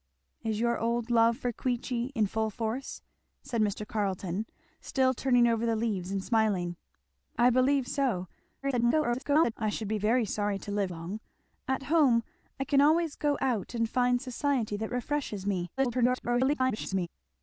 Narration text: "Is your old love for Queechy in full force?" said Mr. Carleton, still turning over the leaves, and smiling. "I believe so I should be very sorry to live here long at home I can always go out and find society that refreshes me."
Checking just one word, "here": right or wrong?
wrong